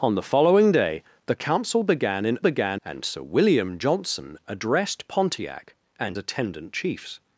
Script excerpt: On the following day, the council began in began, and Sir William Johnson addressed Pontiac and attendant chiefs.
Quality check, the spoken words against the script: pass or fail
pass